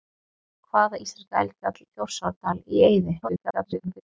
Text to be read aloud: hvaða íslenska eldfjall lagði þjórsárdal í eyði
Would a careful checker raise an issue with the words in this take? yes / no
yes